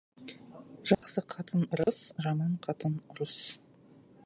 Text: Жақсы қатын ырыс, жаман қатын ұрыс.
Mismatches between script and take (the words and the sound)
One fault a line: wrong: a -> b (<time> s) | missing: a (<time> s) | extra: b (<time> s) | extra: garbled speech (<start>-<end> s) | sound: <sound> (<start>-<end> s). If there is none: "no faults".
sound: dropout (0.9-1.0 s)
sound: dropout (1.8-1.9 s)